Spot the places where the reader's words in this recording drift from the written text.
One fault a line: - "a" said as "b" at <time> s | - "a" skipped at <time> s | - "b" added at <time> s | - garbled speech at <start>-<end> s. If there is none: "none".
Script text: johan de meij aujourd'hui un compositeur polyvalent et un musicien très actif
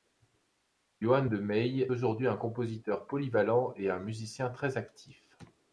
none